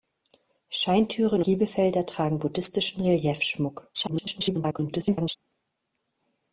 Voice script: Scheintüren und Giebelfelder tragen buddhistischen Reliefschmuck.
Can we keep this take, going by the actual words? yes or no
no